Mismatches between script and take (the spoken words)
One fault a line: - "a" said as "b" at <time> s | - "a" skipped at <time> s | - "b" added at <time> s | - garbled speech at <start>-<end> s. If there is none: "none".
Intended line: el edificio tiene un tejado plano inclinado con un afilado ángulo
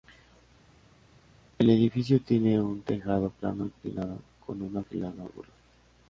none